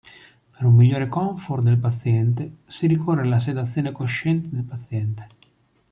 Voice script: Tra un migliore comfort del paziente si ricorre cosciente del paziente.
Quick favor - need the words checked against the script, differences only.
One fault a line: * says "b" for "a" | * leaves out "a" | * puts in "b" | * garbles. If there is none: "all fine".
* says "Per" for "Tra"
* puts in "alla sedazione"